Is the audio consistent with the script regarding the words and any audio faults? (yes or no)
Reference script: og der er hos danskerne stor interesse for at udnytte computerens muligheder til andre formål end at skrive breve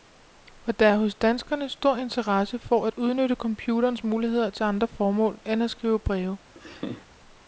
no